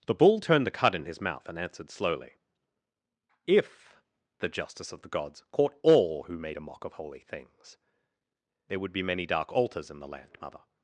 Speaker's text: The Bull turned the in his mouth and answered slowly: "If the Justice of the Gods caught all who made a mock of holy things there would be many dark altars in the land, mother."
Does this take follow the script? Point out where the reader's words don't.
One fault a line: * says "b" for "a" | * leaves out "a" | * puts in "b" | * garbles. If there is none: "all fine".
* puts in "cud"